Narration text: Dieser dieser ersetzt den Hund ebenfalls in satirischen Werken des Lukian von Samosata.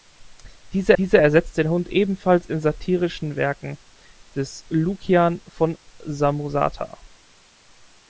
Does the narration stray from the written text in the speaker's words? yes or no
no